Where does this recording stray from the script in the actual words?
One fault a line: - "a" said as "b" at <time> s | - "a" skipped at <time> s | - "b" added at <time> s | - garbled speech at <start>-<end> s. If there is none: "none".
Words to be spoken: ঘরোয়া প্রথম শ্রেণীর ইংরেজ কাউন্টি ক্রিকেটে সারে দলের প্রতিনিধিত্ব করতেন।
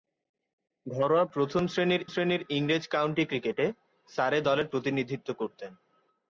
- "শ্রেণীর" added at 2.1 s